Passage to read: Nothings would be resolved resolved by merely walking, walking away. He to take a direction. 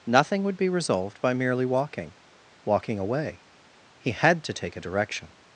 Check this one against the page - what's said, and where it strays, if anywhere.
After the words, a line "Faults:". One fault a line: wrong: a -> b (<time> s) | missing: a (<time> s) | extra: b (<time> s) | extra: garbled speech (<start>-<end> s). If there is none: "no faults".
Nothing would be resolved by merely walking, walking away. He had to take a direction.
Faults:
wrong: Nothings -> Nothing (0.1 s)
missing: resolved (1.2 s)
extra: had (4.1 s)